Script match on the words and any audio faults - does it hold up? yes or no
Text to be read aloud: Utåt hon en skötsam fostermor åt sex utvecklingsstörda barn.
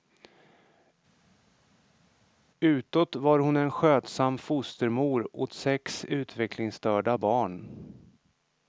no